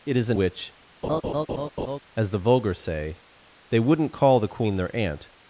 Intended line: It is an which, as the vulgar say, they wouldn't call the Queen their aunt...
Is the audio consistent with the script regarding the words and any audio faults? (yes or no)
no